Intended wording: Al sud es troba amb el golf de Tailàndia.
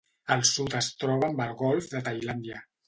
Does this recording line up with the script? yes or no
yes